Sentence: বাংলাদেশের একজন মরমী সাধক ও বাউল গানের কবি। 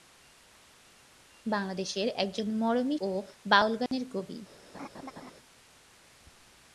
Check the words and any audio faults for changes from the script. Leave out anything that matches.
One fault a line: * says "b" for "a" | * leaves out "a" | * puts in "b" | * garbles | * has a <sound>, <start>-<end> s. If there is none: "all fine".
* leaves out "সাধক"
* has a dropout, 3.9-3.9 s
* has a laugh, 4.7-5.3 s